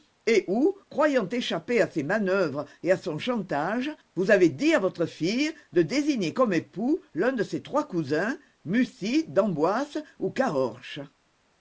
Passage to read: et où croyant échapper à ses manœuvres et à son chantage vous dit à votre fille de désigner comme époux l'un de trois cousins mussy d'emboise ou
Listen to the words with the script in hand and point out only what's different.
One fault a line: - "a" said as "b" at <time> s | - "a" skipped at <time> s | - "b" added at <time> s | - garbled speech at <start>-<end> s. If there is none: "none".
- "avez" added at 4.3 s
- "ses" added at 7.4 s